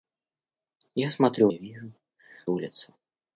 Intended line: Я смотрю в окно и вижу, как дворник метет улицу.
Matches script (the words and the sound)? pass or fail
fail